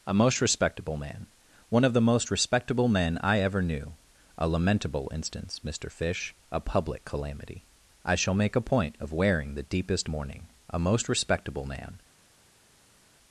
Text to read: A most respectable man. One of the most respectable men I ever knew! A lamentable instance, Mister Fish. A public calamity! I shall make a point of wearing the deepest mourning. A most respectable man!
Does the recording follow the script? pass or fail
pass